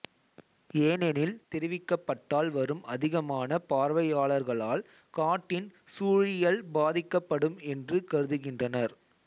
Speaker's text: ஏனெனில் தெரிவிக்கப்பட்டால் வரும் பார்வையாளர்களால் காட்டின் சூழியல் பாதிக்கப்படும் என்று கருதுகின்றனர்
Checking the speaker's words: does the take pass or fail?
fail